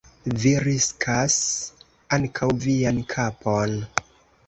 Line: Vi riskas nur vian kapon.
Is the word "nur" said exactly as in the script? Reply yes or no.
no